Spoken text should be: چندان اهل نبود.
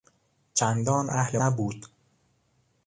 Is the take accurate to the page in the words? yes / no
yes